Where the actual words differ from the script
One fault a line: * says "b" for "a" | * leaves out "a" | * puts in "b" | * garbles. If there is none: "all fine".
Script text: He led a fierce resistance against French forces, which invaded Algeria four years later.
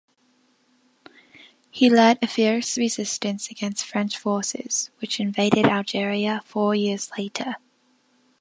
all fine